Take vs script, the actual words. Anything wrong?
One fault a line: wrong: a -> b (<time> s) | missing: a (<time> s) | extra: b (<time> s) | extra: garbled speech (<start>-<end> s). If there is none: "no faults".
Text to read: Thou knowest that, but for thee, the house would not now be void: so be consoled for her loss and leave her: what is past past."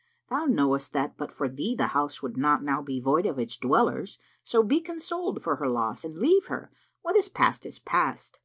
extra: of its dwellers (3.3 s)
extra: is (7.7 s)